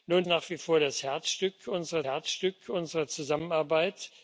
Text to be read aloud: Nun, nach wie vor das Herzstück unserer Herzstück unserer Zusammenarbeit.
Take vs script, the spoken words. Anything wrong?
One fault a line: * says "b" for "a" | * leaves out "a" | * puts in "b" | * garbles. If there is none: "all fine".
all fine